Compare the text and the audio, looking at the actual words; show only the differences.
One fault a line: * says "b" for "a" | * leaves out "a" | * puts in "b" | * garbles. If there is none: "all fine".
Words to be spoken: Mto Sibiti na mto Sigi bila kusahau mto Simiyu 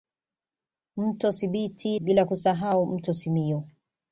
* leaves out "na mto Sigi"